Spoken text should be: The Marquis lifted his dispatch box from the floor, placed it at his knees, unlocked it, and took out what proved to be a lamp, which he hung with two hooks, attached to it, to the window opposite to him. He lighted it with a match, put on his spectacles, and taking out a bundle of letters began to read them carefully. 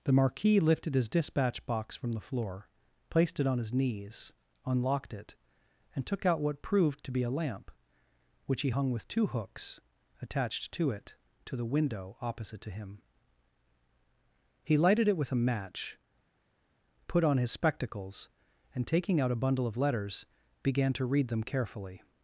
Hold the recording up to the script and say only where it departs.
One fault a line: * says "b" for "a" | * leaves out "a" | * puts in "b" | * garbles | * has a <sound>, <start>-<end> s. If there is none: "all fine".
* says "on" for "at"